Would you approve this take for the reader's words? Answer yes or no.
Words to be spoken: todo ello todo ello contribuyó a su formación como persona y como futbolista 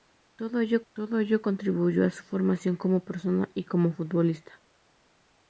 yes